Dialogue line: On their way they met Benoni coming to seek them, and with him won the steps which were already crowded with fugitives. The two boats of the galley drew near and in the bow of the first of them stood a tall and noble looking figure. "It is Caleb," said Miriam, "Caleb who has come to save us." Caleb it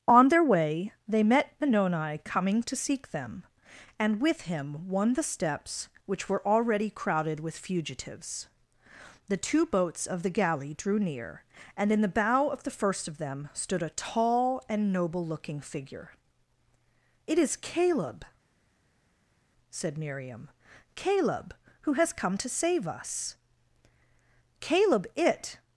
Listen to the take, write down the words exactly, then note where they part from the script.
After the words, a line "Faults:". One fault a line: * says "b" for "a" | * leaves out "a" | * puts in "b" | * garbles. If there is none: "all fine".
On their way they met Benoni coming to seek them, and with him won the steps which were already crowded with fugitives. The two boats of the galley drew near and in the bow of the first of them stood a tall and noble looking figure. "It is Caleb," said Miriam, "Caleb who has come to save us." Caleb it
Faults:
all fine